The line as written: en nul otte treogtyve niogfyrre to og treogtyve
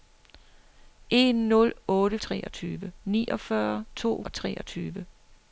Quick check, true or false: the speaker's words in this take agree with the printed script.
true